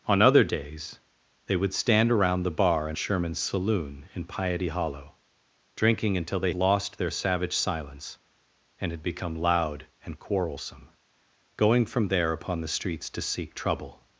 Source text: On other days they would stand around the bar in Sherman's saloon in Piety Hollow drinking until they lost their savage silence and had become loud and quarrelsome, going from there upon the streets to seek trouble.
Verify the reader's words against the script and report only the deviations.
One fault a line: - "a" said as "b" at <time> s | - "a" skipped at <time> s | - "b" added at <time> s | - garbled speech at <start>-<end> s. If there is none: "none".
none